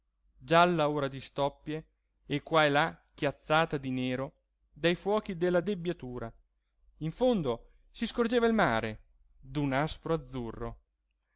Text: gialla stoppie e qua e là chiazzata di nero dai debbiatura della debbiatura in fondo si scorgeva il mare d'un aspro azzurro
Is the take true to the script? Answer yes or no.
no